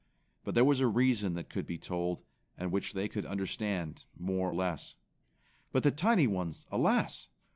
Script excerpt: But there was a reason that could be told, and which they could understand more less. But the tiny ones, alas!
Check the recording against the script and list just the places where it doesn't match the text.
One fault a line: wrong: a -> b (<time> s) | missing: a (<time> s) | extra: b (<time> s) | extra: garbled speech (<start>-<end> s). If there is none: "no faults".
no faults